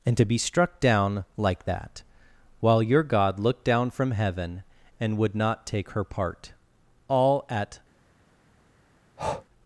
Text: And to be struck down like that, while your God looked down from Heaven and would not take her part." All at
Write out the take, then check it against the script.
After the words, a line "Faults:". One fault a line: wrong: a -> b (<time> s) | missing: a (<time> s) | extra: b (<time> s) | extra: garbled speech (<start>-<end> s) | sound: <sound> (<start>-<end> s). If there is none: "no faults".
And to be struck down like that, while your God looked down from Heaven and would not take her part." All at
Faults:
sound: breath (9.2-9.5 s)